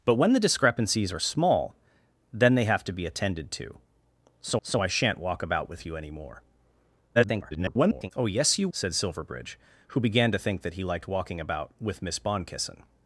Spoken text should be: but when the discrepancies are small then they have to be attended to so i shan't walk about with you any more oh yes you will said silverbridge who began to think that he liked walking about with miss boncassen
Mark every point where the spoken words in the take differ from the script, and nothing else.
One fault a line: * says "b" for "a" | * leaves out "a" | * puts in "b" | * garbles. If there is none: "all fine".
* puts in "so"
* garbles
* leaves out "will"